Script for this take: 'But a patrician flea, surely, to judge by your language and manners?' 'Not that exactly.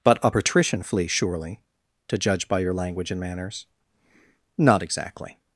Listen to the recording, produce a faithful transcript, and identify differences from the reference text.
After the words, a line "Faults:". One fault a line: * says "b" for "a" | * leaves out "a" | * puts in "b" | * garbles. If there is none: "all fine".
'But a patrician flea, surely, to judge by your language and manners?' 'Not exactly.
Faults:
* leaves out "that"